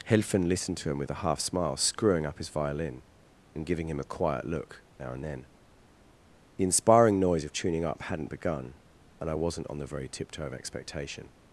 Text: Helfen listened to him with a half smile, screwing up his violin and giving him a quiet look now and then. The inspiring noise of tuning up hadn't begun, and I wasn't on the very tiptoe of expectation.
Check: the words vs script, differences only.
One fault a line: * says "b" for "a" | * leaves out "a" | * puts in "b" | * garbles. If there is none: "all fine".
all fine